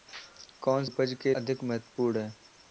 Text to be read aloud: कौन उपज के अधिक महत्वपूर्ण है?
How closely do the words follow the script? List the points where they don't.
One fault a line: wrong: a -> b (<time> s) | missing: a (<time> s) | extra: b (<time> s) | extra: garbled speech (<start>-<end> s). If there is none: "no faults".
no faults